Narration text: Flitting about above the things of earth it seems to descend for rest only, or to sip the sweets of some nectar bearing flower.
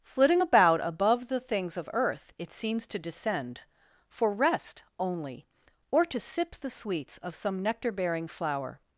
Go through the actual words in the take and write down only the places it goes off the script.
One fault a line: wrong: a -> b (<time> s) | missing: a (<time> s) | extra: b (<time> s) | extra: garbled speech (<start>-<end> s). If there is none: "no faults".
no faults